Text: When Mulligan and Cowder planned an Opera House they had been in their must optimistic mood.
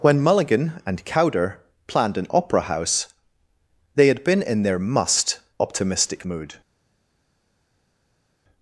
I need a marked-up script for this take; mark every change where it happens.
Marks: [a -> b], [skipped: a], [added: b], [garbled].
When Mulligan and Cowder planned an Opera House they had been in their must optimistic mood.